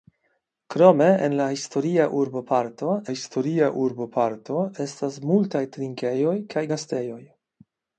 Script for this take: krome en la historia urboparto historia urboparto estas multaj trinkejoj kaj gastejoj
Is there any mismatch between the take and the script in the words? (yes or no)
no